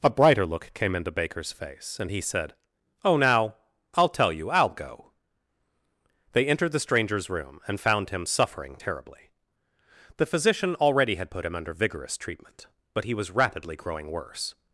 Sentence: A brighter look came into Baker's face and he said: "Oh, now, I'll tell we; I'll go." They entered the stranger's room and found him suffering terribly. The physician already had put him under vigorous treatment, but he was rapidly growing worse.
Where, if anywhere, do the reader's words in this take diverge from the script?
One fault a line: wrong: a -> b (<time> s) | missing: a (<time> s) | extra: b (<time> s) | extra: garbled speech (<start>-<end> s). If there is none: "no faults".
wrong: we -> you (4.3 s)